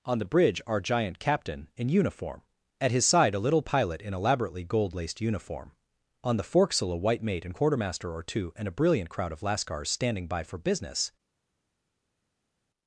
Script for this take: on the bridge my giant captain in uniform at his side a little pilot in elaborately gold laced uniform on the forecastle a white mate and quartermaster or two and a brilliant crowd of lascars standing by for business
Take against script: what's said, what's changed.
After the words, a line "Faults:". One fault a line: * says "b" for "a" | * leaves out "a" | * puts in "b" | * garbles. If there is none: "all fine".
on the bridge our giant captain in uniform at his side a little pilot in elaborately gold laced uniform on the forecastle a white mate and quartermaster or two and a brilliant crowd of lascars standing by for business
Faults:
* says "our" for "my"